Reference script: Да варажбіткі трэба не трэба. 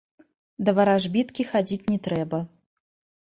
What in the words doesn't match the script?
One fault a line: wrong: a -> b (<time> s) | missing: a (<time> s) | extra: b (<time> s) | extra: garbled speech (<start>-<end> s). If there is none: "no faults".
wrong: трэба -> хадзіць (1.5 s)